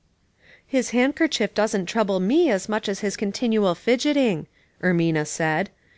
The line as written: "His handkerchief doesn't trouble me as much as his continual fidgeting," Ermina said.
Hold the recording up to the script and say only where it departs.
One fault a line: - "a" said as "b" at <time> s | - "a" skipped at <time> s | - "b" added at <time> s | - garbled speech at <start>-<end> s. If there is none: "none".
none